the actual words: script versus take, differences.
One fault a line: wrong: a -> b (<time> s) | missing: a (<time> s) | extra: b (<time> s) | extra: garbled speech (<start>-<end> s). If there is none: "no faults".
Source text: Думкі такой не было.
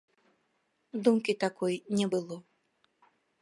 no faults